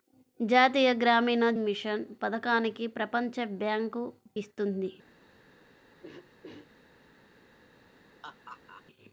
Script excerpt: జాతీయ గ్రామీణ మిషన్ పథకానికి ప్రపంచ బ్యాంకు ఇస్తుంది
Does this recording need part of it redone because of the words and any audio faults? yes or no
yes